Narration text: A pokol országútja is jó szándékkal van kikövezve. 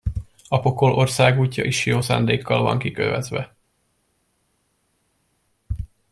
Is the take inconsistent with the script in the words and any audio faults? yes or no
no